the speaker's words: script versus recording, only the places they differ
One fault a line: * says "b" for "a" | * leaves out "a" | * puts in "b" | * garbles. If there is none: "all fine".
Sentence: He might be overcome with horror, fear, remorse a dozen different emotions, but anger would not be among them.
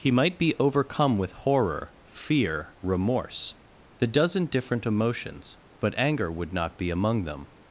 * says "the" for "a"